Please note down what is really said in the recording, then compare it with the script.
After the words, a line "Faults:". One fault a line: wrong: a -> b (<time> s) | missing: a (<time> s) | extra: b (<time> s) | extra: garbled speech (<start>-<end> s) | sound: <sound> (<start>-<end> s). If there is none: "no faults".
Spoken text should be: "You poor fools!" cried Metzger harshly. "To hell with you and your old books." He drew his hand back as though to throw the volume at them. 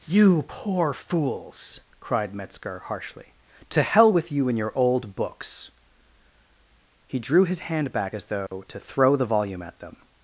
"You poor fools!" cried Metzger harshly. "To hell with you and your old books." He drew his hand back as though to throw the volume at them.
Faults:
sound: dropout (8.5-8.5 s)